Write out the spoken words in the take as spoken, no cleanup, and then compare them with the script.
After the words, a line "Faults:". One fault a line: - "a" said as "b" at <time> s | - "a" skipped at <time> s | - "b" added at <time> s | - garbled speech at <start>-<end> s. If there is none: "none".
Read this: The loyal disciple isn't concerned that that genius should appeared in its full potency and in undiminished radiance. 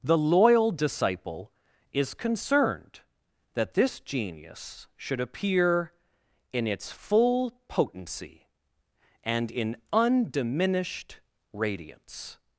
The loyal disciple is concerned that this genius should appear in its full potency and in undiminished radiance.
Faults:
- "isn't" said as "is" at 1.9 s
- "that" said as "this" at 3.7 s
- "appeared" said as "appear" at 5.2 s